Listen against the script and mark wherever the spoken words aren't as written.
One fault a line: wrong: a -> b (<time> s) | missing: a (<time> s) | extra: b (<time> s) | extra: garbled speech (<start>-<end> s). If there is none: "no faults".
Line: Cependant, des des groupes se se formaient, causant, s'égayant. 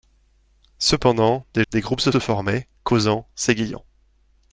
no faults